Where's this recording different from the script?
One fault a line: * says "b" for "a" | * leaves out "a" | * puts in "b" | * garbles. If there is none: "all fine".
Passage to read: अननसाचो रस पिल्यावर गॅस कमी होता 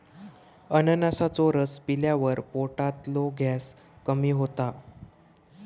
* puts in "पोटातलो"